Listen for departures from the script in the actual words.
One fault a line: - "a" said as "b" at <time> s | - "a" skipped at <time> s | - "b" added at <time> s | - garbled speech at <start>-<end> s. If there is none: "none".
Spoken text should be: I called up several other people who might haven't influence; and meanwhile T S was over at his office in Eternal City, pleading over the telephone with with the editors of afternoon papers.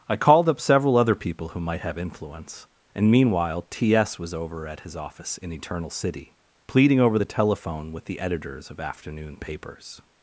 - "haven't" said as "have" at 1.8 s
- "with" skipped at 8.0 s